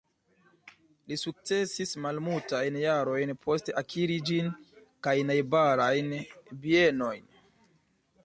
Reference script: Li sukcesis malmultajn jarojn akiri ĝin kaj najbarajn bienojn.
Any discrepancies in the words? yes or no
yes